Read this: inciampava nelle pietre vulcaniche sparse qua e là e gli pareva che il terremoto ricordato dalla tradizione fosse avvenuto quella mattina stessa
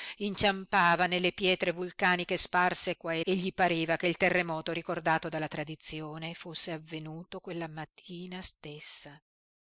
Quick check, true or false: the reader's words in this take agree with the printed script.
false